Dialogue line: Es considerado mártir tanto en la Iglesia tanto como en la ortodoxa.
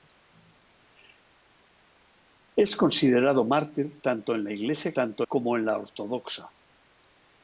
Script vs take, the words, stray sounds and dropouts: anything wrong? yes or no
no